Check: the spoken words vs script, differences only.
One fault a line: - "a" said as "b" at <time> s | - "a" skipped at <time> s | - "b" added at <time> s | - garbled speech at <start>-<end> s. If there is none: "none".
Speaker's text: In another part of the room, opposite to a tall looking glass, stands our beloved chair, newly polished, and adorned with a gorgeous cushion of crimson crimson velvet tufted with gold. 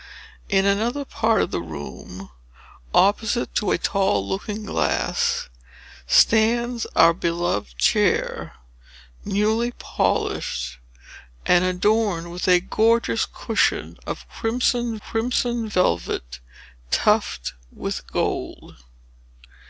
none